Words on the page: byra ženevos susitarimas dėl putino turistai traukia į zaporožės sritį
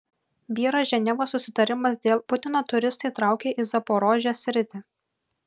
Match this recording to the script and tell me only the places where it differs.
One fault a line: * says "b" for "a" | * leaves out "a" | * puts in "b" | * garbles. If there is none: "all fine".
all fine